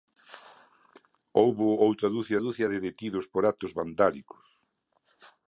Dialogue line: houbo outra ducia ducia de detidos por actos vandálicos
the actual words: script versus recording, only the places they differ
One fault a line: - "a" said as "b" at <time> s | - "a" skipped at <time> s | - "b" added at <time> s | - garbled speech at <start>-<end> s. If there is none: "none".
none